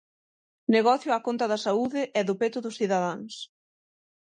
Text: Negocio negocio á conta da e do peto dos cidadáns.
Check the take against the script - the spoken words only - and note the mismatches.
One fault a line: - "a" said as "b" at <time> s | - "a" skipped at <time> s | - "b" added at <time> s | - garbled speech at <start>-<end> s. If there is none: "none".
- "negocio" skipped at 1.1 s
- "saúde" added at 1.6 s